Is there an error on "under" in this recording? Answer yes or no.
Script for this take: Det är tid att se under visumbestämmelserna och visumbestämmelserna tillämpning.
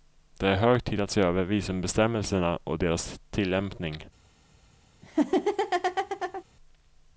yes